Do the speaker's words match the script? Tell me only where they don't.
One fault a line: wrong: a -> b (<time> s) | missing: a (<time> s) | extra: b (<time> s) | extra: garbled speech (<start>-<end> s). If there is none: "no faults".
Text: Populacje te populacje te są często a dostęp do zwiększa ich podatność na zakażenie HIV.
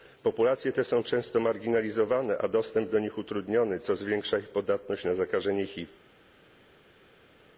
missing: populacje te (0.8 s)
extra: marginalizowane (1.4 s)
extra: nich utrudniony co (3.0 s)